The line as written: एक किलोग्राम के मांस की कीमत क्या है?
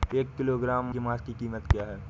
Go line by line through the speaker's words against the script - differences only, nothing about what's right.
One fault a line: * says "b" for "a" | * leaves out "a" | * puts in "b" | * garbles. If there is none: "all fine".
all fine